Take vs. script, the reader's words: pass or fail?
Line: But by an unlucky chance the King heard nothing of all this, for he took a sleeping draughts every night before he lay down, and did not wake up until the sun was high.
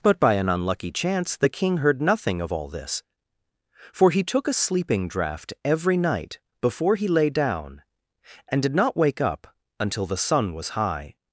fail